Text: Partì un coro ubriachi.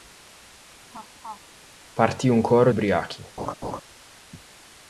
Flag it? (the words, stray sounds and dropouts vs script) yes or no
yes